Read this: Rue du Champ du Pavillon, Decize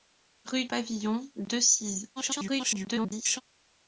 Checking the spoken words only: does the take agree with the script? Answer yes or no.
no